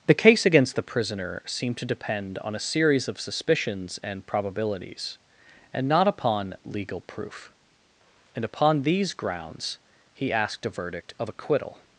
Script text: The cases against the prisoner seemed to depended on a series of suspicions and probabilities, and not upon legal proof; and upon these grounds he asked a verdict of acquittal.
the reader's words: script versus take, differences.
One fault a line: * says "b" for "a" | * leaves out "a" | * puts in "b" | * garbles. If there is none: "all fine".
* says "case" for "cases"
* says "depend" for "depended"